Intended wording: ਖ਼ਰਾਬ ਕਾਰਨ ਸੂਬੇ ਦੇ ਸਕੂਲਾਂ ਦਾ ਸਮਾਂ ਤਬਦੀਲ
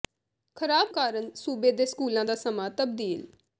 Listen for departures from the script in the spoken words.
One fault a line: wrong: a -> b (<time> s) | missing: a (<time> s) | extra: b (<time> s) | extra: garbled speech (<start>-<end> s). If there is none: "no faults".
no faults